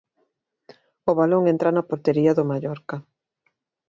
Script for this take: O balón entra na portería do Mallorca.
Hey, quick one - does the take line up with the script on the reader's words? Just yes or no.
yes